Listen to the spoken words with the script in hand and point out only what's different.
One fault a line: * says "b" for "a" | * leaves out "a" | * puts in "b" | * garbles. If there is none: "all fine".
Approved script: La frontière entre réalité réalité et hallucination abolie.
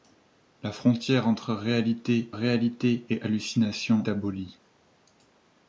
all fine